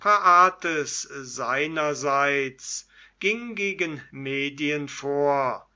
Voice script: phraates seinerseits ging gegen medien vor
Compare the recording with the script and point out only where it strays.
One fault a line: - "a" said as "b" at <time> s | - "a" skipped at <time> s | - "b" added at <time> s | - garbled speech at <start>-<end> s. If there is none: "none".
none